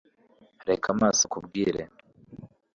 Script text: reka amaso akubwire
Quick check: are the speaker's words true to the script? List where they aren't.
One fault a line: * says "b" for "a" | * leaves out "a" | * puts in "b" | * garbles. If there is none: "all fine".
all fine